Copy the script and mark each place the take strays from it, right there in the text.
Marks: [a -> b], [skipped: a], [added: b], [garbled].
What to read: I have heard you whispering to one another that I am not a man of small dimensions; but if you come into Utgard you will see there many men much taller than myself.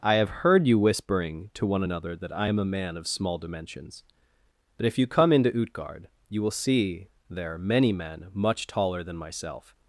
I have heard you whispering to one another that I am [skipped: not] a man of small dimensions; but if you come into Utgard you will see there many men much taller than myself.